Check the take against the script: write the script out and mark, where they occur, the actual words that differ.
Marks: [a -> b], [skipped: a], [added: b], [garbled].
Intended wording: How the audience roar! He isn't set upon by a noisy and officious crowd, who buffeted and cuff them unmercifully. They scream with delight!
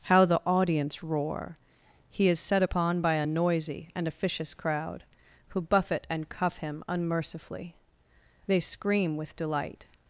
How the audience roar! He [isn't -> is] set upon by a noisy and officious crowd, who [buffeted -> buffet] and cuff [them -> him] unmercifully. They scream with delight!